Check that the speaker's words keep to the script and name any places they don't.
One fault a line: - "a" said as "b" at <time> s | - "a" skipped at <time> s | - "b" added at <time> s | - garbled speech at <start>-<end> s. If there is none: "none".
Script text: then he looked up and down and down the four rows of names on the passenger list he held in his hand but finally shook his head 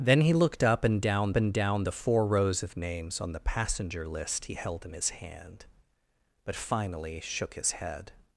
none